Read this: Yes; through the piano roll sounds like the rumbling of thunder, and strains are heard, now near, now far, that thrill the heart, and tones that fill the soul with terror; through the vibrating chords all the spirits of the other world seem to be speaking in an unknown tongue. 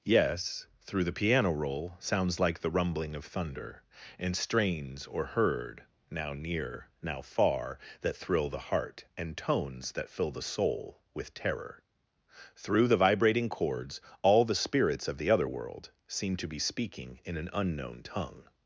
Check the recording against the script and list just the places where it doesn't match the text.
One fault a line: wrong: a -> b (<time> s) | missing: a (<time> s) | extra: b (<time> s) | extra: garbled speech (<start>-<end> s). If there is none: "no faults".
wrong: are -> or (5.0 s)